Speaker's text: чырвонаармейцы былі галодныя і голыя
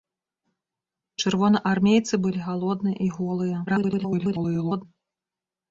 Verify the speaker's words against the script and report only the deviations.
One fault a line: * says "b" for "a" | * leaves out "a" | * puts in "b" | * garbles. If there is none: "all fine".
* garbles